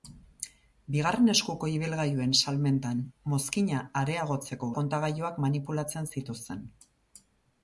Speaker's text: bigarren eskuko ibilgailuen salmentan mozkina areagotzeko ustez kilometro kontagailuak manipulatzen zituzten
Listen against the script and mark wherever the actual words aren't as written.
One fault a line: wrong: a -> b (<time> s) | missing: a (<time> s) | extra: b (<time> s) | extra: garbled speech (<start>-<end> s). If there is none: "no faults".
missing: ustez kilometro (4.7 s)